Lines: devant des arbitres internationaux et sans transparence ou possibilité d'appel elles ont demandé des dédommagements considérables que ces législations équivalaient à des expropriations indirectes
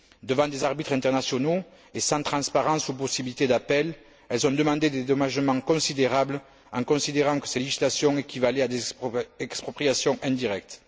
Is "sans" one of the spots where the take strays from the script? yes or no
no